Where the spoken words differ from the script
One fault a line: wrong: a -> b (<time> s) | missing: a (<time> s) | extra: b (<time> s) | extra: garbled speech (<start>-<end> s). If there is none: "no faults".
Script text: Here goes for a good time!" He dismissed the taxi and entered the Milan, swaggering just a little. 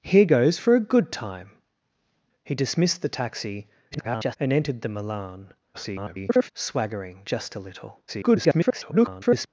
extra: garbled speech (3.9-4.4 s)
extra: garbled speech (5.7-6.5 s)
extra: garbled speech (8.1-9.5 s)